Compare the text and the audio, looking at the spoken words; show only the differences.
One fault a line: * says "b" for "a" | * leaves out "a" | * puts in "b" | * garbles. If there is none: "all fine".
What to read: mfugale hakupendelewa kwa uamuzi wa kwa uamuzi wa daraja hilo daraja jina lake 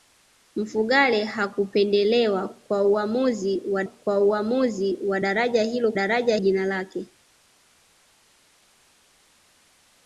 all fine